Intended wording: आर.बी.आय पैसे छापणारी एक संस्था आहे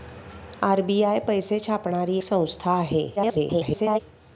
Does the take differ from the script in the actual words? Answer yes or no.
yes